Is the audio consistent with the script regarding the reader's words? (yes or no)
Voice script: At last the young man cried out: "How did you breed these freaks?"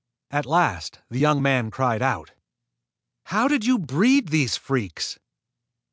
yes